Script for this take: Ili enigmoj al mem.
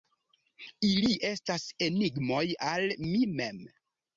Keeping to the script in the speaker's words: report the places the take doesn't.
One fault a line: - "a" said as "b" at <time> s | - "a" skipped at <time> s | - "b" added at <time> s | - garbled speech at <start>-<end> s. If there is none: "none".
- "estas" added at 1.3 s
- "mi" added at 3.1 s